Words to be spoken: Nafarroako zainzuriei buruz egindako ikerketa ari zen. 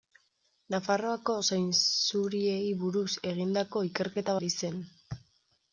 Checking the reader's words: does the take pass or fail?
pass